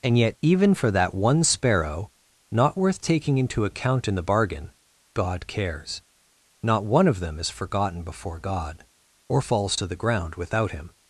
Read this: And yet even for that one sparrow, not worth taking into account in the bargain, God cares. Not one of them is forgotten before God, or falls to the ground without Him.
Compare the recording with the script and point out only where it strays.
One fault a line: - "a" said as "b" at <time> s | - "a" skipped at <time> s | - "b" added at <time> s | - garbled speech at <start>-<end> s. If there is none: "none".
none